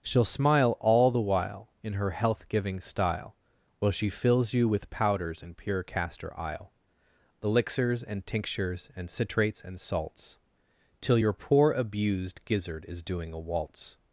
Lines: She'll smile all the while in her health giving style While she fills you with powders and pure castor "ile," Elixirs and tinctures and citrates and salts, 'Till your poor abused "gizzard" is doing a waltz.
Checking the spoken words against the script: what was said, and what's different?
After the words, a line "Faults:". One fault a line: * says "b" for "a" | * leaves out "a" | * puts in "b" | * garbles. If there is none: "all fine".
She'll smile all the while in her health giving style While she fills you with powders and pure castor "ile," Elixirs and tinctures and citrates and salts, 'Till your poor abused "gizzard" is doing a waltz.
Faults:
all fine